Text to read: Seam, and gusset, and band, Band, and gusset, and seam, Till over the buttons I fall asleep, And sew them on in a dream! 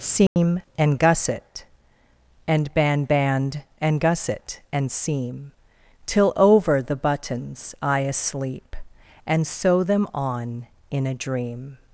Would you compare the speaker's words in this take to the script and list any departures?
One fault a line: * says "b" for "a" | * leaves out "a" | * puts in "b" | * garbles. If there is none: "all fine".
* leaves out "fall"